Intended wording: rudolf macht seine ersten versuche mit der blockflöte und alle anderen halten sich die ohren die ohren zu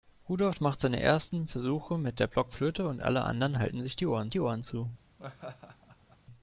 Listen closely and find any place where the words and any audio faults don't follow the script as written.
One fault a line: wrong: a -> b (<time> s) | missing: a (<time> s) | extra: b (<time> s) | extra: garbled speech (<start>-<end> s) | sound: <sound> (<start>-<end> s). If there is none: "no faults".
sound: laugh (5.2-6.2 s)